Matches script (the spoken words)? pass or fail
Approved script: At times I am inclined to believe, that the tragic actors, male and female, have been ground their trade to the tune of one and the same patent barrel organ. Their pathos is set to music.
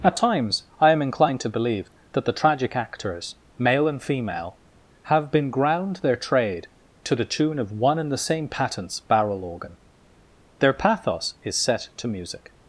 fail